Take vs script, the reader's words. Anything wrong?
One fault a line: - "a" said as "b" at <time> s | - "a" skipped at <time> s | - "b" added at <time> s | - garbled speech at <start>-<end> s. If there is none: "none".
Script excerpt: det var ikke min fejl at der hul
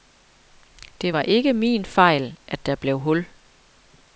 - "blev" added at 2.7 s